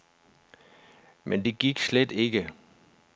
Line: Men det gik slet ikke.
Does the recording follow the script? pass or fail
pass